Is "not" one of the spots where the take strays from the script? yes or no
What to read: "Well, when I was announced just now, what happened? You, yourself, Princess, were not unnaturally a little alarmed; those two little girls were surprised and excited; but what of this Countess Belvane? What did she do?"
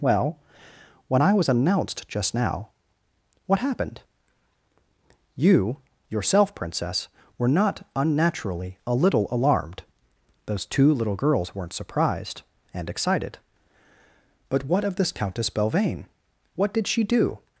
no